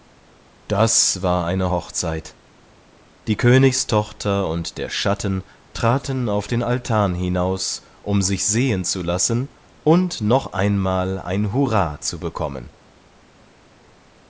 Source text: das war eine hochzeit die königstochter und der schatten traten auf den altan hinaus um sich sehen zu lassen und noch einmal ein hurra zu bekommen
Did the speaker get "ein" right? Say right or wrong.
right